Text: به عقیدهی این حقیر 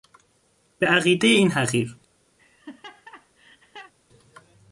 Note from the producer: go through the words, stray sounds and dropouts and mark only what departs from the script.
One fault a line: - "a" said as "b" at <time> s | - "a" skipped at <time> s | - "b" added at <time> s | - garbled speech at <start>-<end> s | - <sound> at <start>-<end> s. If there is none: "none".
- laugh at 2.4-3.9 s